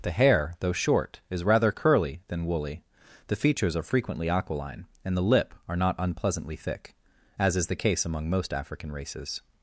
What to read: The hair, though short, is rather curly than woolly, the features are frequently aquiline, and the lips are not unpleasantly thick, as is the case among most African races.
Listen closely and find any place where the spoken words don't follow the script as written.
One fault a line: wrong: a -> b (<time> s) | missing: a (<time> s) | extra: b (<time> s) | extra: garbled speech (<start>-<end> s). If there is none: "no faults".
wrong: lips -> lip (5.2 s)